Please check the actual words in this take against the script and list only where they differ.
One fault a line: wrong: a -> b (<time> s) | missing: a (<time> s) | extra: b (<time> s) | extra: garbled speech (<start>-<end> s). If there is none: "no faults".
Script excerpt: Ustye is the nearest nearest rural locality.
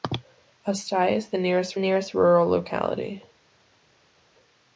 no faults